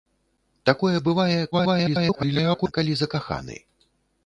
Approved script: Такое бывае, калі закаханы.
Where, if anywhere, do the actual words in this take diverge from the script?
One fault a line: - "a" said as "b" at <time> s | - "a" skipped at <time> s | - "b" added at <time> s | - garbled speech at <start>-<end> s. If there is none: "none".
- garbled speech at 1.5-2.7 s